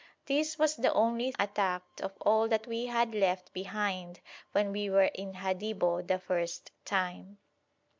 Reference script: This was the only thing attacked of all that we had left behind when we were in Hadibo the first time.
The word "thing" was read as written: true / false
false